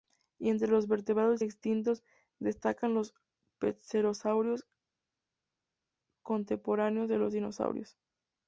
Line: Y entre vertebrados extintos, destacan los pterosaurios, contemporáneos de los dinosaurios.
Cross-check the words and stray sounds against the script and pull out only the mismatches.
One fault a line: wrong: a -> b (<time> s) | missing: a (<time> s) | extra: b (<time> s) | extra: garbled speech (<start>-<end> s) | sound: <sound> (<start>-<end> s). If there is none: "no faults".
extra: los (0.7 s)